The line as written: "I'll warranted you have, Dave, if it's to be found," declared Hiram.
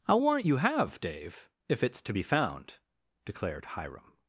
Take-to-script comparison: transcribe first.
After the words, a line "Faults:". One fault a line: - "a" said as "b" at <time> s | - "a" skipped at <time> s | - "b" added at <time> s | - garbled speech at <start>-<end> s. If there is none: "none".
"I'll warrant you have, Dave, if it's to be found," declared Hiram.
Faults:
- "warranted" said as "warrant" at 0.2 s